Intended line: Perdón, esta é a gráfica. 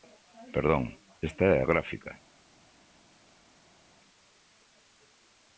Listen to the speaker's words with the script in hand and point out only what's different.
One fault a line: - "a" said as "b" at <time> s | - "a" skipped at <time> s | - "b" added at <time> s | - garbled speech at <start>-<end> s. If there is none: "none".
none